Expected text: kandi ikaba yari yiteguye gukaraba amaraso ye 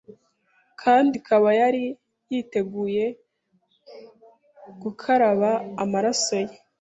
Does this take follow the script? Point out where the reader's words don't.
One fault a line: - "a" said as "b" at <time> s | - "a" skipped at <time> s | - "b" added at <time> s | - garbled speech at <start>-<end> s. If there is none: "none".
none